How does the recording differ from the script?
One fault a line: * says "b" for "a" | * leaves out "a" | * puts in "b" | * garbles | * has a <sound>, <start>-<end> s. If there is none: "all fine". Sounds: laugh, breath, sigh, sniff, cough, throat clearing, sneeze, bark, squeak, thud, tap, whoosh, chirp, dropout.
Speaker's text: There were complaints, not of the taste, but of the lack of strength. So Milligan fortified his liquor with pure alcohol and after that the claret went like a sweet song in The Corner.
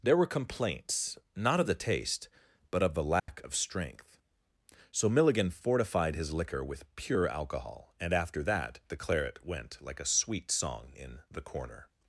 * has a dropout, 3.2-3.3 s